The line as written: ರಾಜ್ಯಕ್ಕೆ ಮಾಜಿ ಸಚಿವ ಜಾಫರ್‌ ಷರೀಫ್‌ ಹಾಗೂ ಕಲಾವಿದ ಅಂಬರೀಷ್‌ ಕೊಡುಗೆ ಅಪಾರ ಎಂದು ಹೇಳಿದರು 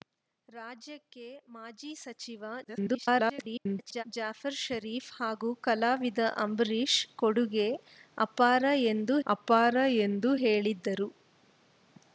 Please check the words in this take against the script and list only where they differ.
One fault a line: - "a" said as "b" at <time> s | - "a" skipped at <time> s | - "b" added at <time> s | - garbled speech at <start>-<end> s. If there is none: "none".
- garbled speech at 2.6-4.0 s
- "ಅಪಾರ ಎಂದು" added at 9.3 s